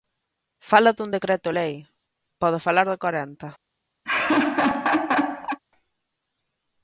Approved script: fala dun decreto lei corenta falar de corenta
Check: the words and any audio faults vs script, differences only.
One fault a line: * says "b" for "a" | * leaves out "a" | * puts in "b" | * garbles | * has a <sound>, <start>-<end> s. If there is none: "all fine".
* says "pode" for "corenta"
* has a laugh, 4.0-5.6 s